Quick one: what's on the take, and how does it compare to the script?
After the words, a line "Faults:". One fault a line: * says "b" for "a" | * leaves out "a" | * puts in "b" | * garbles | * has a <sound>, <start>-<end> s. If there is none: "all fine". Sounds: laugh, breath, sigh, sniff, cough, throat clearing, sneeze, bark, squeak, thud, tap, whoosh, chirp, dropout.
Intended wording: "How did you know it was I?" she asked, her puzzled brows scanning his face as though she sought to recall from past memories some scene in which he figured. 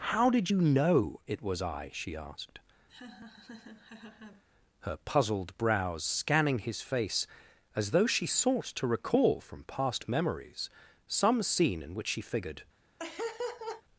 "How did you know it was I?" she asked, her puzzled brows scanning his face as though she sought to recall from past memories some scene in which she figured.
Faults:
* has a laugh, 2.9-4.4 s
* says "she" for "he"
* has a laugh, 13.0-13.8 s